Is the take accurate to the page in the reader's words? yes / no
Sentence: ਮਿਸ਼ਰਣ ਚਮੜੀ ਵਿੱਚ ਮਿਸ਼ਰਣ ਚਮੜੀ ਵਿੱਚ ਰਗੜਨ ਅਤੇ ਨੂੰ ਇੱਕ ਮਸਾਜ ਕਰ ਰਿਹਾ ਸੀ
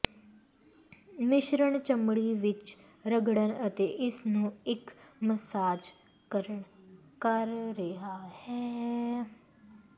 no